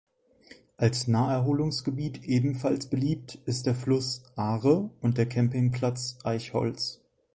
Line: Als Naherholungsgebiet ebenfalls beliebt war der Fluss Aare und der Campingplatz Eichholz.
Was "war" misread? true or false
true